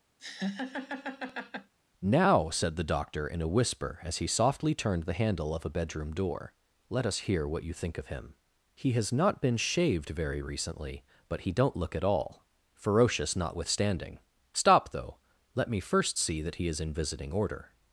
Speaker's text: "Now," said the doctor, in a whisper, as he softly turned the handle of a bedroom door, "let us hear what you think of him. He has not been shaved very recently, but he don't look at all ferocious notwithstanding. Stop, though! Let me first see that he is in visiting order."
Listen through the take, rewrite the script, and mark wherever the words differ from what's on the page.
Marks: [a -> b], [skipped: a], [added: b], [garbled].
"Now," said the doctor, in a whisper, as he softly turned the handle of a bedroom door, "let us hear what you think of him. He has not been shaved very recently, but he don't look at all ferocious notwithstanding. Stop, though! Let me first see that he is in visiting order."